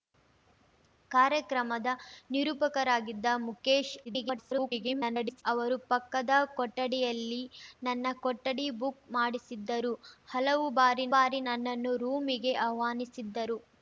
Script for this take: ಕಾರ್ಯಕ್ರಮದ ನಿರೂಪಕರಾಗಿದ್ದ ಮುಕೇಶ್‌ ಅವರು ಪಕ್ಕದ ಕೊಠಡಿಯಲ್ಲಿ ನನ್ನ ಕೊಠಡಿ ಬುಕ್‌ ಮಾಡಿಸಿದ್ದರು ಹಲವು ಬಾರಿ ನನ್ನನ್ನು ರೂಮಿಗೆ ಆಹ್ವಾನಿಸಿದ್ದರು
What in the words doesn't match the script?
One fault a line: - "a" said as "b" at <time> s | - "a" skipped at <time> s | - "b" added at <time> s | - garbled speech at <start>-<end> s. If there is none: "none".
- garbled speech at 4.0-5.4 s
- "ಬಾರಿ" added at 11.1 s